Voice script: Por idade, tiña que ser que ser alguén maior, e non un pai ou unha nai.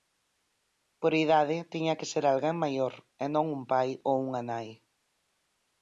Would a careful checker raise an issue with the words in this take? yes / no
yes